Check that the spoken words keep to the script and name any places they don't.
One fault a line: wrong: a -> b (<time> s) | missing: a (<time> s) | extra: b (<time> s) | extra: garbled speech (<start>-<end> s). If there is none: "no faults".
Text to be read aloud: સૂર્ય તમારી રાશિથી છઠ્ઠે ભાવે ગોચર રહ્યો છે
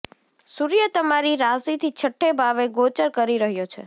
extra: કરી (3.1 s)